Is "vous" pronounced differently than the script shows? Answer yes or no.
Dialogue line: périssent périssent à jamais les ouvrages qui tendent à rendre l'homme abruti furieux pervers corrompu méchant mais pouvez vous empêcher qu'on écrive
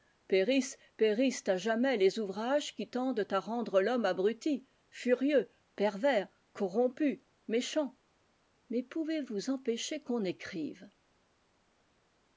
no